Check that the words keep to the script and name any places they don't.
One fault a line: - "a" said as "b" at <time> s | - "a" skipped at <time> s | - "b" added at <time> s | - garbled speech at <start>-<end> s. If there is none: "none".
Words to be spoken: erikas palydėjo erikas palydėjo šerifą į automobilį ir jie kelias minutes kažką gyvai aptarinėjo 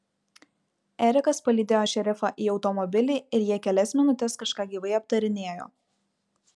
- "erikas palydėjo" skipped at 1.8 s